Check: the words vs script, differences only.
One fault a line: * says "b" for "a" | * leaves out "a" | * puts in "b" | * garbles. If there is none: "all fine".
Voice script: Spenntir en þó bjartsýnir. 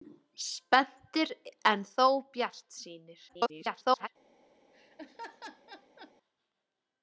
* garbles